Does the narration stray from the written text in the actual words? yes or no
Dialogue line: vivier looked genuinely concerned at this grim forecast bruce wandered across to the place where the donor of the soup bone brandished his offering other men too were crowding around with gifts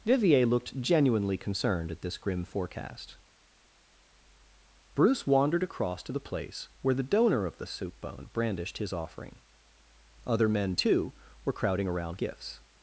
yes